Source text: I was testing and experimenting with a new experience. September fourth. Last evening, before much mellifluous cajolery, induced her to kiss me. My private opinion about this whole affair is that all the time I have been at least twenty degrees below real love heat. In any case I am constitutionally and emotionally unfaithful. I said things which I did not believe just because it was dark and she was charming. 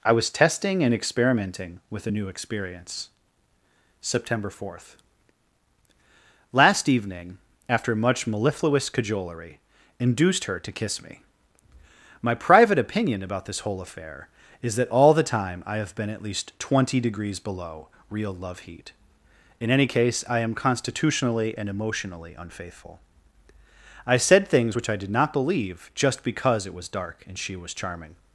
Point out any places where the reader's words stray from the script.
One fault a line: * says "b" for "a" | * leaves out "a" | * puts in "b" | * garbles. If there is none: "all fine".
* says "after" for "before"